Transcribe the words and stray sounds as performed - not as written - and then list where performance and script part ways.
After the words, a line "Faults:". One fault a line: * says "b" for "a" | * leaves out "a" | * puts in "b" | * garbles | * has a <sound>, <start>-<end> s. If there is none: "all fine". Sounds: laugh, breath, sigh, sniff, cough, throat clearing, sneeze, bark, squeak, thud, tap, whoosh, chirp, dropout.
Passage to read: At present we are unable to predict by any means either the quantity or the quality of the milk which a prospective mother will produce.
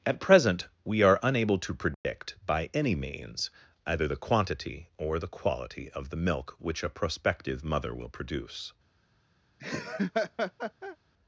At present we are unable to predict by any means either the quantity or the quality of the milk which a prospective mother will produce.
Faults:
* has a dropout, 1.9-2.0 s
* has a laugh, 9.6-11.0 s